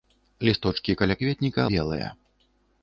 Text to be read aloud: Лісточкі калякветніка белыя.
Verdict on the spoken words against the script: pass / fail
pass